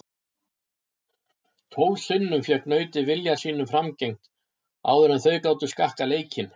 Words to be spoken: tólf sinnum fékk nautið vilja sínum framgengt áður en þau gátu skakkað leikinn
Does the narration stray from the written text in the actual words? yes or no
no